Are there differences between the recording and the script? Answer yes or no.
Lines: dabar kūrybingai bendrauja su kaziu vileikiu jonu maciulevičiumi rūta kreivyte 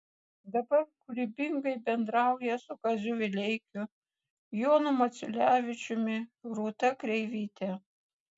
no